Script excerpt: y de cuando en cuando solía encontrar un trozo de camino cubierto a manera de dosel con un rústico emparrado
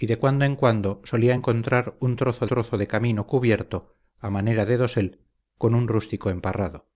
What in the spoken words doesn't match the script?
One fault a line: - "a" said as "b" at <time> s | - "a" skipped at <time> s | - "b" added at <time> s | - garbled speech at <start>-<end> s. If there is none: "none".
- "trozo" added at 2.4 s